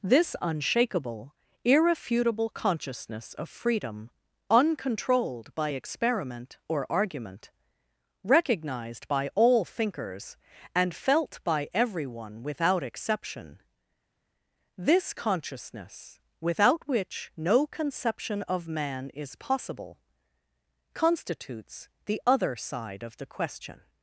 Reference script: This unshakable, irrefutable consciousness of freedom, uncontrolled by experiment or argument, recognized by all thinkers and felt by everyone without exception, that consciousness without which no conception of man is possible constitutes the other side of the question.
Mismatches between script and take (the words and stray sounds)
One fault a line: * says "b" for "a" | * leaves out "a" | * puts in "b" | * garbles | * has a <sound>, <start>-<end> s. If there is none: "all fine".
* says "this" for "that"